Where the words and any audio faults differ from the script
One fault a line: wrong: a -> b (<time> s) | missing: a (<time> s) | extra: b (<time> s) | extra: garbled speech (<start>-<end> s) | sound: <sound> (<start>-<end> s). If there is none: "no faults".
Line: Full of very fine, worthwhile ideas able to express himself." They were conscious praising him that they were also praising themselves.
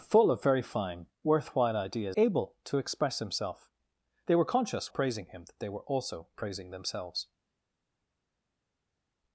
no faults